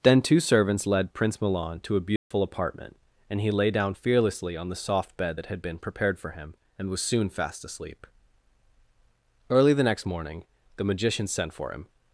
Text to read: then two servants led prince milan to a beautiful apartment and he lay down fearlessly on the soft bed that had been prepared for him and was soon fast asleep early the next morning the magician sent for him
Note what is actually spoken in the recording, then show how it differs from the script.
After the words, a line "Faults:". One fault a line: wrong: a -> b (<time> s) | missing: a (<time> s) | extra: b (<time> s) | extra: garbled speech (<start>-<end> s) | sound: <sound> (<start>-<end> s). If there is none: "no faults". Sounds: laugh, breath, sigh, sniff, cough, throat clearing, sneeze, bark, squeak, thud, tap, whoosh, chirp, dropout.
then two servants led prince milan to a beautiful apartment and he lay down fearlessly on the soft bed that had been prepared for him and was soon fast asleep early the next morning the magician sent for him
Faults:
sound: dropout (2.2-2.3 s)